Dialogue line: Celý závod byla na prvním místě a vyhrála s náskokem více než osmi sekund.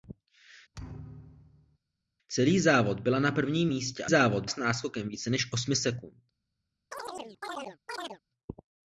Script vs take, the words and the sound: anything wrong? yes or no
yes